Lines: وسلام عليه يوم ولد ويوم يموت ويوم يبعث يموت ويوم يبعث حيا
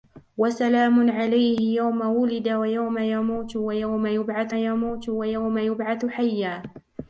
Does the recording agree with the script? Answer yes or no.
yes